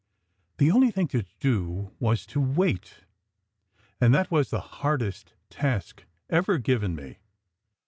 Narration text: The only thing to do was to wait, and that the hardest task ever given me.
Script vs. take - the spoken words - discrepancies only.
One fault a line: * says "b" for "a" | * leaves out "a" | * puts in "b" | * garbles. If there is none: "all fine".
* puts in "was"